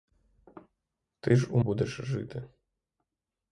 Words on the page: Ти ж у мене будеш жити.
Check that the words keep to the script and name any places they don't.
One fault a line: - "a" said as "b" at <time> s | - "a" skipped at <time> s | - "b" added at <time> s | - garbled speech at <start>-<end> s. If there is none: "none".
- "мене" skipped at 1.6 s